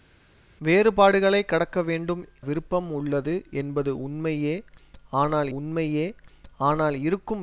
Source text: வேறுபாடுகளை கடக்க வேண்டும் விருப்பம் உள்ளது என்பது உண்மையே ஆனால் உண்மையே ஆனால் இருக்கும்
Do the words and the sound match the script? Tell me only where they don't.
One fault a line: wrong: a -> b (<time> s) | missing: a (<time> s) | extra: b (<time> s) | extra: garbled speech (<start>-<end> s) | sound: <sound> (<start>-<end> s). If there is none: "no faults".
no faults